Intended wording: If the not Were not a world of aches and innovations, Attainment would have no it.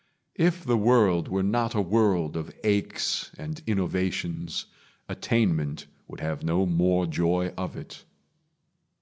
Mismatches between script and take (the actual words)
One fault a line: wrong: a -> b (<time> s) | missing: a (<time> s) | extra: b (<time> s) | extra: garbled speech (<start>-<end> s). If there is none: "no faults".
wrong: not -> world (0.8 s)
extra: more joy of (6.7 s)